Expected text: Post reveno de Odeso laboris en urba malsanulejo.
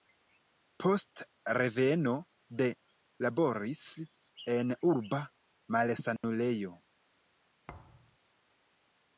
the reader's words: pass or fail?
fail